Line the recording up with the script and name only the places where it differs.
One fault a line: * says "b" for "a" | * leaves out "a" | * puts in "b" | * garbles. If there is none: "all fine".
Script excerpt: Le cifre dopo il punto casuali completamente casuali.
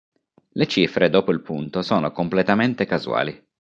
* says "sono" for "casuali"